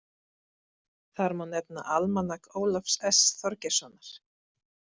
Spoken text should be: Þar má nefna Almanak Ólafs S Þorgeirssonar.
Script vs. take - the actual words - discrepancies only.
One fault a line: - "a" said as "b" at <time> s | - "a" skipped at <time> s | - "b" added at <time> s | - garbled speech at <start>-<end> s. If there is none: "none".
none